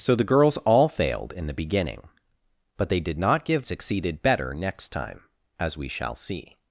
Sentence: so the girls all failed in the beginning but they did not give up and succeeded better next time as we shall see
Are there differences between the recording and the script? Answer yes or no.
yes